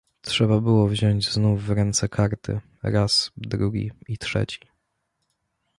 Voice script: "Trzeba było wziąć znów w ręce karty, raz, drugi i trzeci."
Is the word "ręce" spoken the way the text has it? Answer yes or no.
yes